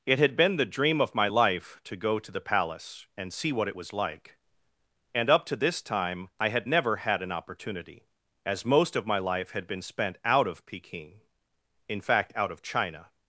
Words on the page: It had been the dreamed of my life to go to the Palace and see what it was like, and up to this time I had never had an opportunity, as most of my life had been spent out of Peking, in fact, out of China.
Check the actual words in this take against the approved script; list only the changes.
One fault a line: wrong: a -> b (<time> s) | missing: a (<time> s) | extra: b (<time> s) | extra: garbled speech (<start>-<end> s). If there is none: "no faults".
wrong: dreamed -> dream (0.7 s)